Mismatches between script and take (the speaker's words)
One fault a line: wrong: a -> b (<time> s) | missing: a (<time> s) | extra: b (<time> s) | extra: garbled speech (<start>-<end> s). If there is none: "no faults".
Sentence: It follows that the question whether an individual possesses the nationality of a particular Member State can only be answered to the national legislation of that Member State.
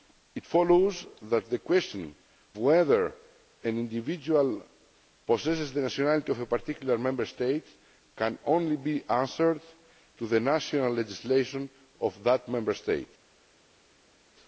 no faults